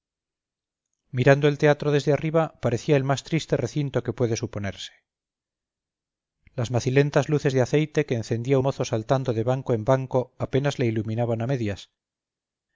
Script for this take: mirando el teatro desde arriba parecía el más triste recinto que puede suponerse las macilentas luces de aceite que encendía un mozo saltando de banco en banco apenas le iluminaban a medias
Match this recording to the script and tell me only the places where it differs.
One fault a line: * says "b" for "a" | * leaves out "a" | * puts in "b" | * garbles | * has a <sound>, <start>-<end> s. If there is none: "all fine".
* leaves out "un"